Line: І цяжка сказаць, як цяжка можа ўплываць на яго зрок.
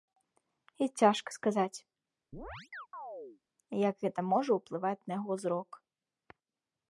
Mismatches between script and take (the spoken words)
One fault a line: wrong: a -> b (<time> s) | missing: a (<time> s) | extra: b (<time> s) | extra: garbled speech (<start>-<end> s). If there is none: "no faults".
wrong: цяжка -> гэта (4.0 s)